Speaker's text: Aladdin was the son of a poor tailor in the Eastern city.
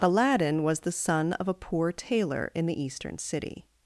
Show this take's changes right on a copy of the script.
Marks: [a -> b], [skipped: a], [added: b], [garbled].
Aladdin was the son of a poor tailor in the Eastern city.